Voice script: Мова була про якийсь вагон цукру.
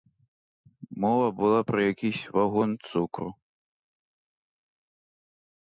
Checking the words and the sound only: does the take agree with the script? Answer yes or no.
yes